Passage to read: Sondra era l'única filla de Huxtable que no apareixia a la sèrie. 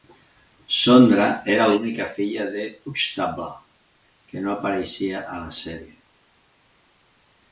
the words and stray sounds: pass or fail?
pass